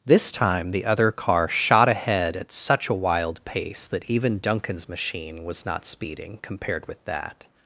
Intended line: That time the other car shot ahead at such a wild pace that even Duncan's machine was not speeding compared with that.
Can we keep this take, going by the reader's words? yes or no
no